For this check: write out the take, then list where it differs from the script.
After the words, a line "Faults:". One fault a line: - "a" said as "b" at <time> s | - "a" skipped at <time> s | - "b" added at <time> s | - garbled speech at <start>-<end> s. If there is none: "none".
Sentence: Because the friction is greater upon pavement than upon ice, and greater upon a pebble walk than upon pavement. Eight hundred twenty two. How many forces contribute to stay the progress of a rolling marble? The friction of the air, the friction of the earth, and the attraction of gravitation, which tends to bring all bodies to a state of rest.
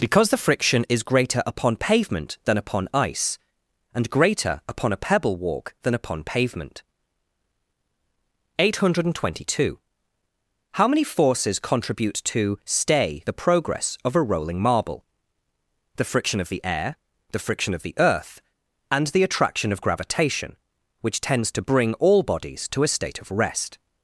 Because the friction is greater upon pavement than upon ice, and greater upon a pebble walk than upon pavement. Eight hundred twenty two. How many forces contribute to stay the progress of a rolling marble? The friction of the air, the friction of the earth, and the attraction of gravitation, which tends to bring all bodies to a state of rest.
Faults:
none